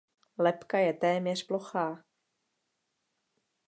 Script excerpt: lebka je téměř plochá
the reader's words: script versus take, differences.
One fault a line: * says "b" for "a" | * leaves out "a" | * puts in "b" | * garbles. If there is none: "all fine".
all fine